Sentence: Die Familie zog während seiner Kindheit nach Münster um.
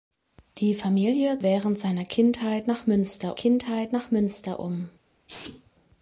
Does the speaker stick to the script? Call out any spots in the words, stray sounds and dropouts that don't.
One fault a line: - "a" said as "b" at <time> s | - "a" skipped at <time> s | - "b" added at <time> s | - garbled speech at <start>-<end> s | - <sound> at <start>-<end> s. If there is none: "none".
- "zog" skipped at 1.4 s
- "Kindheit nach Münster" added at 3.3 s
- sneeze at 5.3-5.7 s